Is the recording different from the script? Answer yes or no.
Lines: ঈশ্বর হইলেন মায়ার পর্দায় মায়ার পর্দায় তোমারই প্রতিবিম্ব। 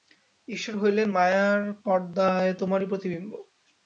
yes